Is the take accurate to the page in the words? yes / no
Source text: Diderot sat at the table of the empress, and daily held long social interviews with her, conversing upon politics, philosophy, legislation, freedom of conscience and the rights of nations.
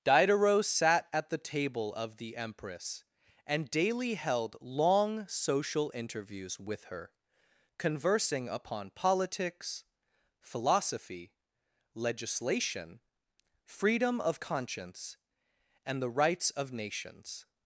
yes